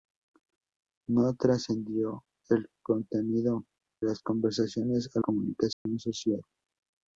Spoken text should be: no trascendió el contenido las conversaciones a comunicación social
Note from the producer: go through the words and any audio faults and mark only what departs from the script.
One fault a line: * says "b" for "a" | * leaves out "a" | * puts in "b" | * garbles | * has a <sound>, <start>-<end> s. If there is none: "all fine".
* has a dropout, 5.7-5.9 s